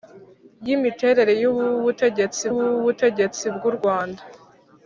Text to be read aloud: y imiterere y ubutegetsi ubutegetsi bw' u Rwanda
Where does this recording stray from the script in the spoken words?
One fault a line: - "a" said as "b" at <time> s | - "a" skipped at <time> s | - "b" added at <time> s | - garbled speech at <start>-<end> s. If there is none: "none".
none